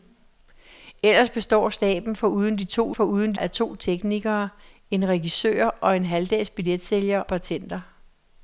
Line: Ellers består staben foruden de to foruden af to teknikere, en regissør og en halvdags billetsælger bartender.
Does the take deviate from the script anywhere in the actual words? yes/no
no